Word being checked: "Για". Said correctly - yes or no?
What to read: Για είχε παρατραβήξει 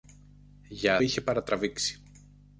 yes